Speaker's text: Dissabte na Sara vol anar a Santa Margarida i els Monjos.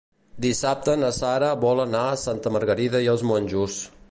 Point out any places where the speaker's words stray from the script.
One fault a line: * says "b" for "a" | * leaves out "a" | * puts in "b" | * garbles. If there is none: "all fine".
all fine